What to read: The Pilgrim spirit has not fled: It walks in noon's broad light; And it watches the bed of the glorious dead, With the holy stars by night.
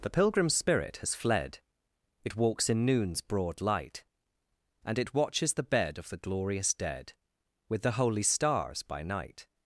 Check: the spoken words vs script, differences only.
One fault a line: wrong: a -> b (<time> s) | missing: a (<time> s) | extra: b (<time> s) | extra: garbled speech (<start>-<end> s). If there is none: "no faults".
missing: not (1.1 s)